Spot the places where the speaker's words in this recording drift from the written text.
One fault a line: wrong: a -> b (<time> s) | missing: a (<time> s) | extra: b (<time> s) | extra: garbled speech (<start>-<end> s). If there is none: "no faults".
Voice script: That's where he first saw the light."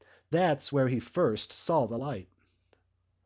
no faults